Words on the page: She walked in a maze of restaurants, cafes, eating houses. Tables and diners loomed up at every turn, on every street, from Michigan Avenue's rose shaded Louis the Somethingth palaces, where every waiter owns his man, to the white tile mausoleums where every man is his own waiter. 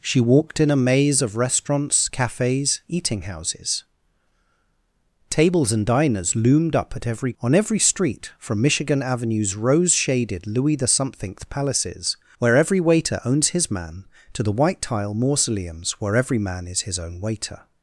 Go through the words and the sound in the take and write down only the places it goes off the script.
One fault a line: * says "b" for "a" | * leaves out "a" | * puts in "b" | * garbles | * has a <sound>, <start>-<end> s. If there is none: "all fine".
* leaves out "turn"